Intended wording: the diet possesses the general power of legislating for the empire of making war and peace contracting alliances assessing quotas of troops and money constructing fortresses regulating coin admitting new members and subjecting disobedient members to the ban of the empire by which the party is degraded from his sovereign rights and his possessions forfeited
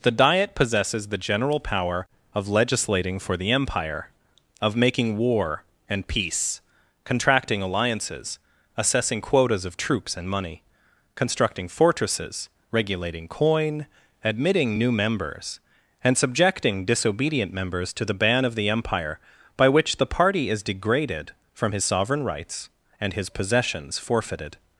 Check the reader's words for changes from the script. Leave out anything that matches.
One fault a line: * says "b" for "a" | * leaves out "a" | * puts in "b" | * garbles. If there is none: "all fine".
all fine